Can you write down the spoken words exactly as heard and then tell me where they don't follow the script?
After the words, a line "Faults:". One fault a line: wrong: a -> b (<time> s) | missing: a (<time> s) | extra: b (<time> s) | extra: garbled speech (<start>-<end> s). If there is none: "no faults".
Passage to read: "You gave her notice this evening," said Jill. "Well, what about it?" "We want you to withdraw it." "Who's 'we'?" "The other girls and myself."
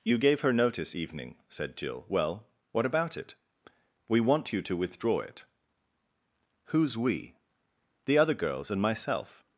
"You gave her notice evening," said Jill. "Well, what about it?" "We want you to withdraw it." "Who's 'we'?" "The other girls and myself."
Faults:
missing: this (0.9 s)